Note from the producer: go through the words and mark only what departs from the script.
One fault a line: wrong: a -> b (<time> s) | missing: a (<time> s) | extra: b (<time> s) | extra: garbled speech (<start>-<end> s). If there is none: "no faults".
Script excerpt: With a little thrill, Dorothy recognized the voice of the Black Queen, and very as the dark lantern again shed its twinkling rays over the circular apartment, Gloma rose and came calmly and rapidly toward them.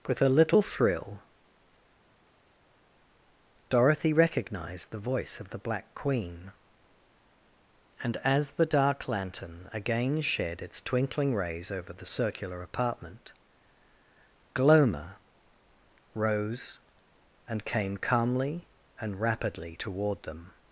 missing: very (8.2 s)